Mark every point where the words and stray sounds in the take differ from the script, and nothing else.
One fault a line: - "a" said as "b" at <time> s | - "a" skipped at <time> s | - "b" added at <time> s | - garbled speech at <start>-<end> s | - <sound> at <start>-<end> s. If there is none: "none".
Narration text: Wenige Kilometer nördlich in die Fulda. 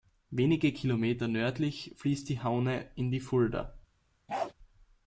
- "fließt die Haune" added at 1.9 s
- bark at 4.3-4.5 s